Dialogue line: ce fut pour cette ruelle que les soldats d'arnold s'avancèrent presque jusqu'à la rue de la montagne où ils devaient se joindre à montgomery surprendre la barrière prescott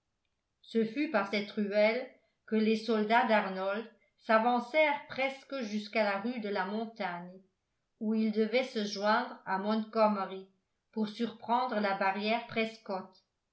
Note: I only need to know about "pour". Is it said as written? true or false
false